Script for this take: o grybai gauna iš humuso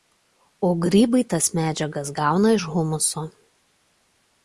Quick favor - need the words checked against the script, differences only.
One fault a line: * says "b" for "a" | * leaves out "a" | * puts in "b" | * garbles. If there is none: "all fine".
* puts in "tas medžiagas"